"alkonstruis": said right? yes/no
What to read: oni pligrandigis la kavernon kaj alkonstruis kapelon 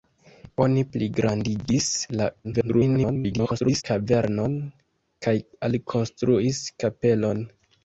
yes